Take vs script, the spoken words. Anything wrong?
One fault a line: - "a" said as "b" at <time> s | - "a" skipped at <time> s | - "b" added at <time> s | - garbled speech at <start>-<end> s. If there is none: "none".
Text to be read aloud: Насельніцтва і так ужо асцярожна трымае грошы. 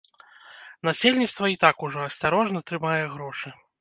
none